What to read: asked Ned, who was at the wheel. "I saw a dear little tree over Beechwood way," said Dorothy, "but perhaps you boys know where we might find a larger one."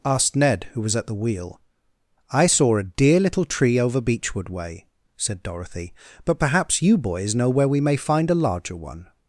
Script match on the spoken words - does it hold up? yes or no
no